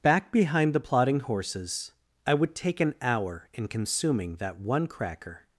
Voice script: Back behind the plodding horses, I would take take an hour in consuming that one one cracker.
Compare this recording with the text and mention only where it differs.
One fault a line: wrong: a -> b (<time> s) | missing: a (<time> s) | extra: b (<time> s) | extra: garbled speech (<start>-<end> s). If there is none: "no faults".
missing: take (2.8 s)
missing: one (4.9 s)